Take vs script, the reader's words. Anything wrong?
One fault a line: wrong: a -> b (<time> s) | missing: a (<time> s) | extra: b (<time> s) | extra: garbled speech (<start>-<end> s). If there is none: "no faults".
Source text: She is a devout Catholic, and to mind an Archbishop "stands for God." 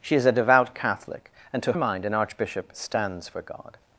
no faults